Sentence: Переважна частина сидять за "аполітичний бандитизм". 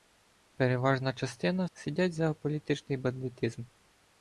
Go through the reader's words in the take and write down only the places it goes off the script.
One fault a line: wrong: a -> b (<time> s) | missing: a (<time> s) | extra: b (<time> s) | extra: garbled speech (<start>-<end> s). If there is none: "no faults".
no faults